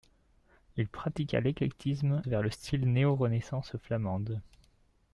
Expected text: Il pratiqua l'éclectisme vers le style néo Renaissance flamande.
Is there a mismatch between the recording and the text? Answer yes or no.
no